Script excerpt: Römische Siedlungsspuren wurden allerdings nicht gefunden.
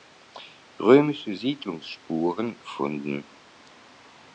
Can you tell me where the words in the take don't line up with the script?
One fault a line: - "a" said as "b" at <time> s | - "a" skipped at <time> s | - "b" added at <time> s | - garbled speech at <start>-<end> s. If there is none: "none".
- "wurden allerdings nicht" skipped at 2.6 s